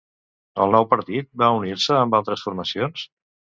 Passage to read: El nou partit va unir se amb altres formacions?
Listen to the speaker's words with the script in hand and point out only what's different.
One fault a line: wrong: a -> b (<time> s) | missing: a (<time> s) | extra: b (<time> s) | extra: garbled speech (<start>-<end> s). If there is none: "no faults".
no faults